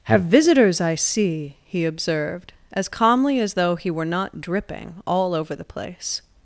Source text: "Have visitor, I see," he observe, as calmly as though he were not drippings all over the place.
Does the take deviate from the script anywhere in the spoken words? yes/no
yes